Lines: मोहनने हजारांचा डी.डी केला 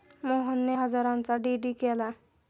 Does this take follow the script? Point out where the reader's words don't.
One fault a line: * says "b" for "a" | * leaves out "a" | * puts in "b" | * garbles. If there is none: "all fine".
all fine